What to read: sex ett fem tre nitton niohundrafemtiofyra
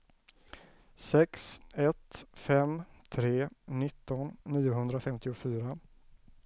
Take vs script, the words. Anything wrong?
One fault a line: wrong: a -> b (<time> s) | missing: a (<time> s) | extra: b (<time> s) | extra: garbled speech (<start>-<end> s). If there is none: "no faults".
no faults